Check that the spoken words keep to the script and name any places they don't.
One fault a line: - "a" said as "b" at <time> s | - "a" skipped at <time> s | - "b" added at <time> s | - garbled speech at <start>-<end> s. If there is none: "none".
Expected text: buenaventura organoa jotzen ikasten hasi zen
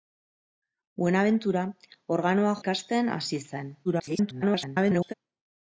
- "jotzen" skipped at 2.6 s
- garbled speech at 3.8-5.1 s